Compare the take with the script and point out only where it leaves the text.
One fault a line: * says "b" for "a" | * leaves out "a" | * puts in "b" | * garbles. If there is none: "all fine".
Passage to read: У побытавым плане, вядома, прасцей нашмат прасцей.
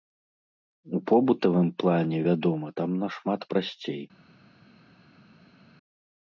* says "там" for "прасцей"